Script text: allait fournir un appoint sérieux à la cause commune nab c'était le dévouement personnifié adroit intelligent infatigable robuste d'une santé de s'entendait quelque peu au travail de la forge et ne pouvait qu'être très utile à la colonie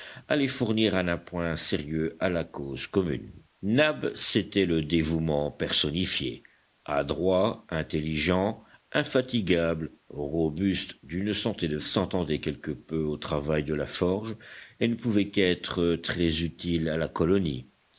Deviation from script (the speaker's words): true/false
false